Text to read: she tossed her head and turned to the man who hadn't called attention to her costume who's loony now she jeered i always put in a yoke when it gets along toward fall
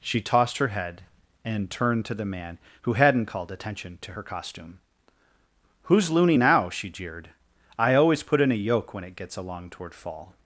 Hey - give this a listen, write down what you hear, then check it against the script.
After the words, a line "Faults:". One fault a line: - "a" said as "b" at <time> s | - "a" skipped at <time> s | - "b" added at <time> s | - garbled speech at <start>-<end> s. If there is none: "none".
she tossed her head and turned to the man who hadn't called attention to her costume who's loony now she jeered i always put in a yoke when it gets along toward fall
Faults:
none